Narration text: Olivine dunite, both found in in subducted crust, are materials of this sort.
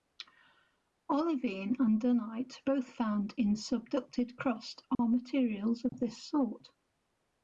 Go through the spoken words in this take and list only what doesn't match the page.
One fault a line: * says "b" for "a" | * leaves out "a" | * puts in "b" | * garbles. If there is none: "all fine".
* puts in "and"
* leaves out "in"